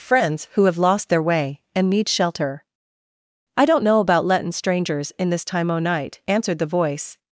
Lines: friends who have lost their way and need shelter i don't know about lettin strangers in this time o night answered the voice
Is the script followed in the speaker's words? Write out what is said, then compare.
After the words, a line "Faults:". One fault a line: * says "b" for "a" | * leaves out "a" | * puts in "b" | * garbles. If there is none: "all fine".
friends who have lost their way and need shelter i don't know about lettin strangers in this time o night answered the voice
Faults:
all fine